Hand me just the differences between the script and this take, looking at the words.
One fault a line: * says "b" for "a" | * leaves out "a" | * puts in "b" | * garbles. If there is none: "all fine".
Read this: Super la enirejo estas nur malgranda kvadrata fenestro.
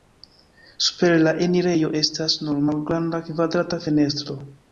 all fine